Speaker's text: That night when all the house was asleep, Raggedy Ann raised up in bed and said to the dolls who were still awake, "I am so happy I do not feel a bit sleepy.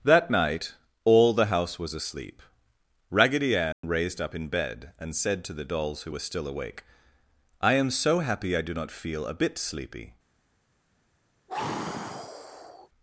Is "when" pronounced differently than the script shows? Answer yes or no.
yes